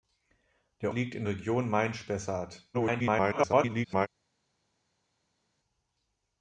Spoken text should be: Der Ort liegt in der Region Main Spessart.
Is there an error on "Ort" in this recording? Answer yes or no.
yes